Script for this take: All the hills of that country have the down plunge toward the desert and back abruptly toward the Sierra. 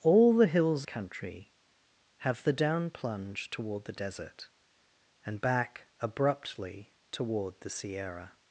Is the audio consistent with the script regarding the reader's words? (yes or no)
no